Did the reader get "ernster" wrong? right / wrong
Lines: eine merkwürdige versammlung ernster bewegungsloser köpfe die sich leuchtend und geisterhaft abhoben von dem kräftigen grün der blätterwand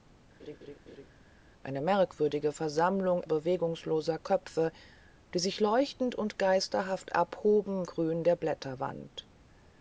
wrong